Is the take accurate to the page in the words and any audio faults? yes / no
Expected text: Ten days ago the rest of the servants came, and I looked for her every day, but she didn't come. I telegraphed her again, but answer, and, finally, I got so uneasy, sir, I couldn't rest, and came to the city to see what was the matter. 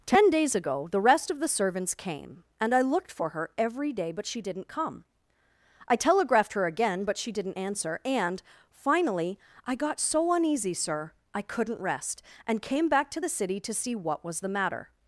no